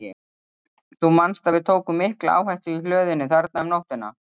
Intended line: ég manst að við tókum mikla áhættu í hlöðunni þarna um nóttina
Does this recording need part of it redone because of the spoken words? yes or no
yes